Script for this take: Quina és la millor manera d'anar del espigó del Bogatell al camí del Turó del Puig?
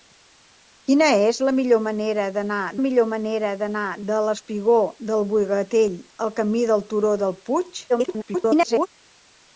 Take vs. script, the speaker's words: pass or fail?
fail